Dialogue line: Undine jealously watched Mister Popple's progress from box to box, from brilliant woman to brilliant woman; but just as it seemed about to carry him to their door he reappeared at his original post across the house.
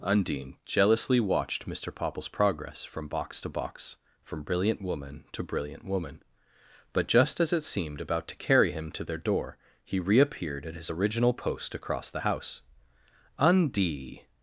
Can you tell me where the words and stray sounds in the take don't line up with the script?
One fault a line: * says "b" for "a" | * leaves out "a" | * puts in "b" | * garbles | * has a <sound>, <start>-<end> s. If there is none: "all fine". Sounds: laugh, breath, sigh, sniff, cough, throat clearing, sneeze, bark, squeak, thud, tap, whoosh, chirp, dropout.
* puts in "Undie"